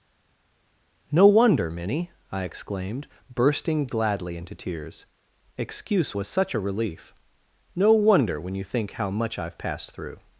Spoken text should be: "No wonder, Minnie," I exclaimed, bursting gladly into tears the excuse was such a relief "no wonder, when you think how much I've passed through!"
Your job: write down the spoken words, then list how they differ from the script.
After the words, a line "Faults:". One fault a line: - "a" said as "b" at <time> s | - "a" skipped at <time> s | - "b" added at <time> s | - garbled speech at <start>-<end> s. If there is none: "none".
"No wonder, Minnie," I exclaimed, bursting gladly into tears excuse was such a relief "no wonder, when you think how much I've passed through!"
Faults:
- "the" skipped at 5.0 s